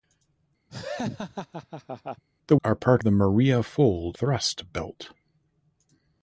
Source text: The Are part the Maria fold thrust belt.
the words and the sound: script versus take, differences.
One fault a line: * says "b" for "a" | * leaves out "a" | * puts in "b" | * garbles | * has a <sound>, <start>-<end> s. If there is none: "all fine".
* has a laugh, 0.7-2.2 s